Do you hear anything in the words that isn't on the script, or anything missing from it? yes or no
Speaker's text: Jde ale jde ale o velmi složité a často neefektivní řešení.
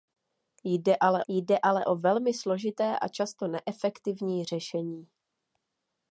no